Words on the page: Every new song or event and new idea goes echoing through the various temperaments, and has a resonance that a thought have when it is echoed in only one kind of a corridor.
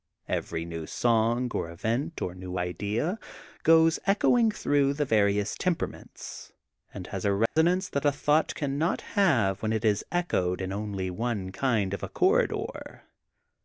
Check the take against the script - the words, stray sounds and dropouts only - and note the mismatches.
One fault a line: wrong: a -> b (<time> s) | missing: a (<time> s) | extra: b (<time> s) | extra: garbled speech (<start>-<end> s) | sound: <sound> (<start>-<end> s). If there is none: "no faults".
wrong: and -> or (2.2 s)
sound: dropout (7.5-7.6 s)
extra: cannot (8.5 s)